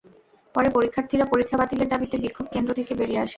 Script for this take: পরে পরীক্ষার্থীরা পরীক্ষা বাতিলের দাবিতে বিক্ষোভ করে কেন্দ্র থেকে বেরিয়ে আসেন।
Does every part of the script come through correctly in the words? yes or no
no